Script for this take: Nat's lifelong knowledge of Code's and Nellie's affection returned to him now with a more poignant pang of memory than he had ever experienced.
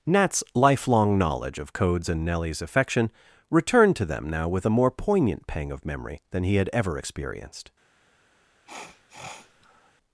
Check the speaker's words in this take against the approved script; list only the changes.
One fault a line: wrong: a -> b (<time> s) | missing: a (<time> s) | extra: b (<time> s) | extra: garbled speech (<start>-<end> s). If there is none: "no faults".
wrong: him -> them (4.1 s)